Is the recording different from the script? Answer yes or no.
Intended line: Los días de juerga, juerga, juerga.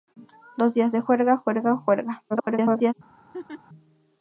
yes